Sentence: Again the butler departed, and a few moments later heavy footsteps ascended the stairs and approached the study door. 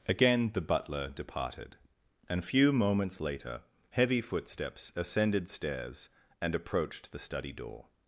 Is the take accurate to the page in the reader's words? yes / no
no